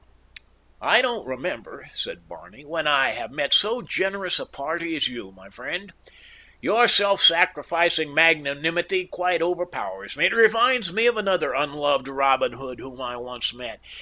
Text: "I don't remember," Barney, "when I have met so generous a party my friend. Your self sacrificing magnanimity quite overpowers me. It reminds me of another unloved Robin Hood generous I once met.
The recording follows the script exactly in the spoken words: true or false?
false